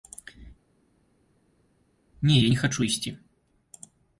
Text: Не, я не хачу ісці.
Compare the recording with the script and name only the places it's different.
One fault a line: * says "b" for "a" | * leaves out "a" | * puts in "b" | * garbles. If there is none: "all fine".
all fine